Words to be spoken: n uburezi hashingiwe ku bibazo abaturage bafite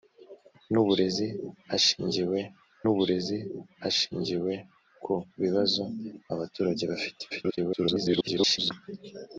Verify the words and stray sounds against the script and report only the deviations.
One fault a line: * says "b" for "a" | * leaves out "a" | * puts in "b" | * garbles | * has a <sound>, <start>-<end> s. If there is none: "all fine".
* puts in "uburezi hashingiwe"
* garbles